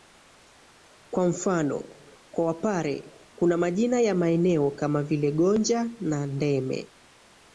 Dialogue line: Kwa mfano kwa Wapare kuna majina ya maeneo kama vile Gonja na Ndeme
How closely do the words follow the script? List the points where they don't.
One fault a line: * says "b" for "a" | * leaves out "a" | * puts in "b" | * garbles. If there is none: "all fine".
all fine